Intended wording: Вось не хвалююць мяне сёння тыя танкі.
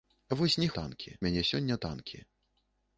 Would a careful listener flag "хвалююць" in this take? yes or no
yes